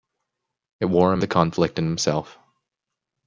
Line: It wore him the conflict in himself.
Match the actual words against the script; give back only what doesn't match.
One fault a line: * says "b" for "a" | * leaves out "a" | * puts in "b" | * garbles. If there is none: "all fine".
all fine